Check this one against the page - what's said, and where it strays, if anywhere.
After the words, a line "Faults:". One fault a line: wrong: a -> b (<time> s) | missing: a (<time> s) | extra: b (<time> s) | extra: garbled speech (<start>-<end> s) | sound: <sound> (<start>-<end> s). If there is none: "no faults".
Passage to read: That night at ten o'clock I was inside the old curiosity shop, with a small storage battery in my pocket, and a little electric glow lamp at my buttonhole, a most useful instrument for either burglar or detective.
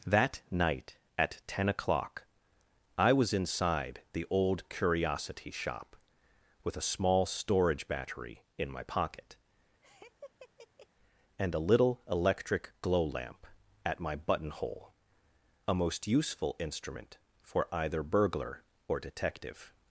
That night at ten o'clock I was inside the old curiosity shop, with a small storage battery in my pocket, and a little electric glow lamp at my buttonhole, a most useful instrument for either burglar or detective.
Faults:
sound: laugh (9.8-10.9 s)